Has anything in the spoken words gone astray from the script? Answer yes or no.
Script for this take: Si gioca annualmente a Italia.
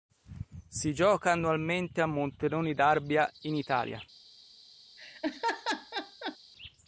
yes